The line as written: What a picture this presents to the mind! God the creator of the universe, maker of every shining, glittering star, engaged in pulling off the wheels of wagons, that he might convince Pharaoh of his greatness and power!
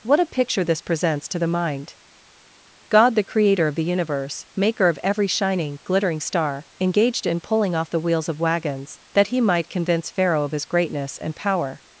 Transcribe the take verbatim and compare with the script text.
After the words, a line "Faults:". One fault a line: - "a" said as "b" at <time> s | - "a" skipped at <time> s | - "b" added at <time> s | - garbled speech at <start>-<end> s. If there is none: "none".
What a picture this presents to the mind! God the creator of the universe, maker of every shining, glittering star, engaged in pulling off the wheels of wagons, that he might convince Pharaoh of his greatness and power!
Faults:
none